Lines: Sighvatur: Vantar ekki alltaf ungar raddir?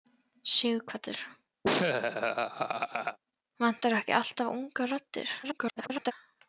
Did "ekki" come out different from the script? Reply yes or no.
no